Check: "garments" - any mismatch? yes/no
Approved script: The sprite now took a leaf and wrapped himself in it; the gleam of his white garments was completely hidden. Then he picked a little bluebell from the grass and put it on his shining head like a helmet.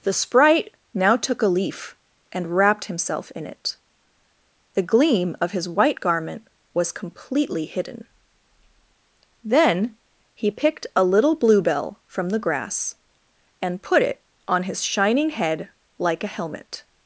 yes